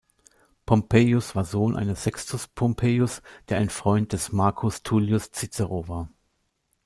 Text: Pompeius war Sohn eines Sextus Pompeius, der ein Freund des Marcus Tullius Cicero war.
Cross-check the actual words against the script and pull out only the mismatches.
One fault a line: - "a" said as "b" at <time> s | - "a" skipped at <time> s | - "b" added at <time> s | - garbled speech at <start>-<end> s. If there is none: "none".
none